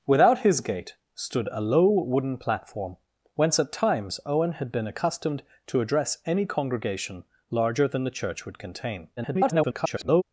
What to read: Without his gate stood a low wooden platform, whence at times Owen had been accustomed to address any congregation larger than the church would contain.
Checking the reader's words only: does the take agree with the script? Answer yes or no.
no